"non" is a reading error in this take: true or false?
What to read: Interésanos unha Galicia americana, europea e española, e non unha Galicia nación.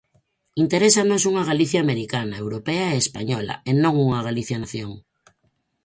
false